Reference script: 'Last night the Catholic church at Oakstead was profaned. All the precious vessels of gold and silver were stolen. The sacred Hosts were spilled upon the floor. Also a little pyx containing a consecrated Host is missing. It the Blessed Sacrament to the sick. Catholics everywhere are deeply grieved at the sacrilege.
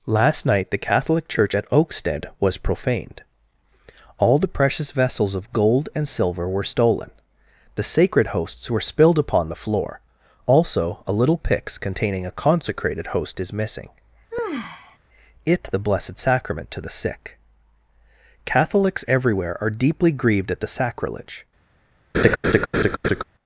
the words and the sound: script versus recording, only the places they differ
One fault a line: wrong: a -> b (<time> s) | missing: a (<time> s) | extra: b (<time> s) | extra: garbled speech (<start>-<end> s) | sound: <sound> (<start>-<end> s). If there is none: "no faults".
sound: sigh (14.3-15.0 s)
sound: laugh (22.1-23.2 s)